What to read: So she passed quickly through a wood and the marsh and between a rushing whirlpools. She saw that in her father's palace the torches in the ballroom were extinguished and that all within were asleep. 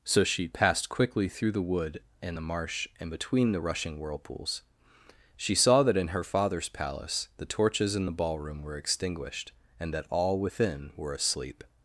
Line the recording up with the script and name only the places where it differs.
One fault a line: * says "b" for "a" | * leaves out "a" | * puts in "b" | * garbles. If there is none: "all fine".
* says "the" for "a"
* says "the" for "a"